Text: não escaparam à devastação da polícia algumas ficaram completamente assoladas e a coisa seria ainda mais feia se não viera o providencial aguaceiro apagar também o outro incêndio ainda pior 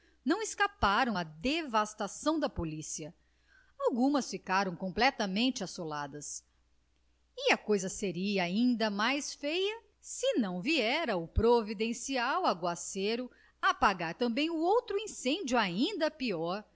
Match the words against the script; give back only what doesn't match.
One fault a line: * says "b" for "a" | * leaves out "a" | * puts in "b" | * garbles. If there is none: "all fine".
all fine